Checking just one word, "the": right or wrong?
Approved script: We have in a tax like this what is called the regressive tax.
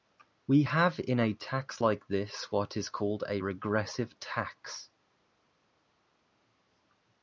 wrong